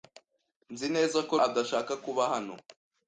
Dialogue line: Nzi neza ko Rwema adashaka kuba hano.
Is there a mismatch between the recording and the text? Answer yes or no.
yes